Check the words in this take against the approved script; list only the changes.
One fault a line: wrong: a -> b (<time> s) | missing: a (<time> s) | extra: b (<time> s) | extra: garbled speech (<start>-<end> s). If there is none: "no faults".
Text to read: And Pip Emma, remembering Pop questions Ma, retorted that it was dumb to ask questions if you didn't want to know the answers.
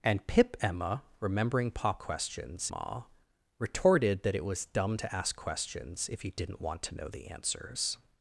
no faults